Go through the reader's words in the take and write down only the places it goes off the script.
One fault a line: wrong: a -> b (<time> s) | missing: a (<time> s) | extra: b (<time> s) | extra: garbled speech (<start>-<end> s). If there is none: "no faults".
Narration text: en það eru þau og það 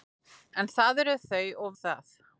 no faults